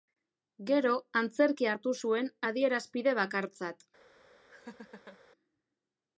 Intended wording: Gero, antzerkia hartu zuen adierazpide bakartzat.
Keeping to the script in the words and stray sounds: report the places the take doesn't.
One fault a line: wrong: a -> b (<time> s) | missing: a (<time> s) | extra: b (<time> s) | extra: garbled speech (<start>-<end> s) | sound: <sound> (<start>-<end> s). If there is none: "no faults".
sound: laugh (4.5-5.2 s)